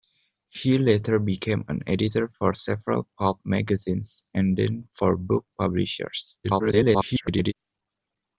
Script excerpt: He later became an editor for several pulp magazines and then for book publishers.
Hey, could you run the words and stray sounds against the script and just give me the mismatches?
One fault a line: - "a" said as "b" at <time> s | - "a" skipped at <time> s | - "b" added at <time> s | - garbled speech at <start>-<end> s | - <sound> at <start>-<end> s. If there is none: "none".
- garbled speech at 6.4-7.5 s